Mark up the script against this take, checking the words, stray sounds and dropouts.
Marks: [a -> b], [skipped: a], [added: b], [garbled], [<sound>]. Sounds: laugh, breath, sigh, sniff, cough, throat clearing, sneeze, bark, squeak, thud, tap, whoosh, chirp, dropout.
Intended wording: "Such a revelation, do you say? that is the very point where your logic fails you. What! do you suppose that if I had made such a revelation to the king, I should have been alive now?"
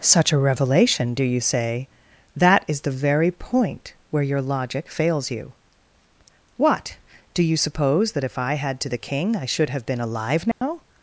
"Such a revelation, do you say? that is the very point where your logic fails you. What! do you suppose that if I had [skipped: made such a revelation] to the king, I should have been alive now?" [dropout]